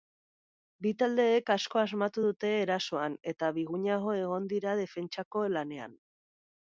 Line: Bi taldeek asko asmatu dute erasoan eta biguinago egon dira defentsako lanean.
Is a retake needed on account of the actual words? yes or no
no